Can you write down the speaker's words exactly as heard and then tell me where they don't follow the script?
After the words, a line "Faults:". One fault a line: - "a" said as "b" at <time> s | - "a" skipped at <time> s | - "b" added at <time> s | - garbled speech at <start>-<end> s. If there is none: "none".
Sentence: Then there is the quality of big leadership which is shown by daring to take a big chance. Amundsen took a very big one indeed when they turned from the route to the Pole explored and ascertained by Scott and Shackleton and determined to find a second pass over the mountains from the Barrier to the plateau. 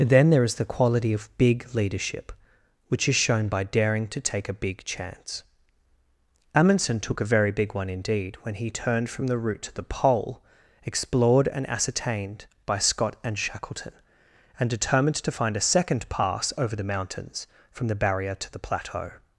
Then there is the quality of big leadership which is shown by daring to take a big chance. Amundsen took a very big one indeed when he turned from the route to the Pole explored and ascertained by Scott and Shackleton and determined to find a second pass over the mountains from the Barrier to the plateau.
Faults:
- "they" said as "he" at 8.5 s